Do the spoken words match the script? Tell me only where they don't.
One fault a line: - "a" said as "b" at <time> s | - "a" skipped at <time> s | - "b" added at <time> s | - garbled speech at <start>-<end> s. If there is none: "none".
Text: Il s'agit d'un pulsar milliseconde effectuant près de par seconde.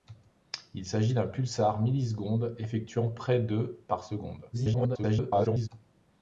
- garbled speech at 4.5-5.7 s